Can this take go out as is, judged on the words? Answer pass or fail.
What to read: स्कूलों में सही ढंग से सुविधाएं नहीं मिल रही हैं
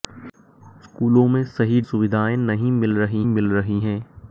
fail